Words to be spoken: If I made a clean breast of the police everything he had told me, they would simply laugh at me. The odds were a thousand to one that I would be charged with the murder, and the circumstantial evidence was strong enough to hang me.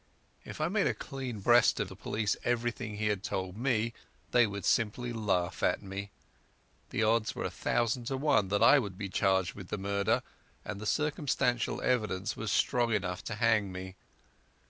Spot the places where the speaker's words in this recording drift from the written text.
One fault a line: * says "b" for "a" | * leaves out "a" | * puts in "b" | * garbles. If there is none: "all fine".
all fine